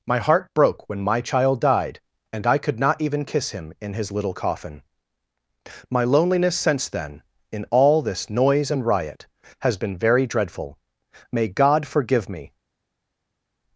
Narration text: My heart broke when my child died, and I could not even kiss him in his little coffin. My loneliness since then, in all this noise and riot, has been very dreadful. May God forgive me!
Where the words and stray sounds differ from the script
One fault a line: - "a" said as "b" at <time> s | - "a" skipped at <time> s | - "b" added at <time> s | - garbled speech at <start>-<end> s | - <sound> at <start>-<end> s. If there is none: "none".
none